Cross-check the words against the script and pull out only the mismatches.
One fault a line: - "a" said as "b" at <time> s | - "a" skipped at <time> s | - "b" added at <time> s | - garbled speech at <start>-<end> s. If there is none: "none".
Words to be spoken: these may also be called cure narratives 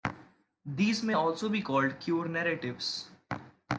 none